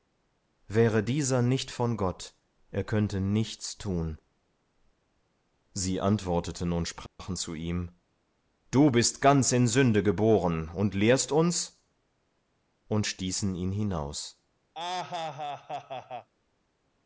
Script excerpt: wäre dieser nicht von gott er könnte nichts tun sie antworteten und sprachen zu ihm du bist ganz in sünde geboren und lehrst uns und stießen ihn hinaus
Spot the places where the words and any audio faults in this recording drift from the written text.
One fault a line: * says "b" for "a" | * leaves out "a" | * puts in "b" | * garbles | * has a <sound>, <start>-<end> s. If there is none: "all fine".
* has a dropout, 7.1-7.2 s
* has a laugh, 14.7-16.3 s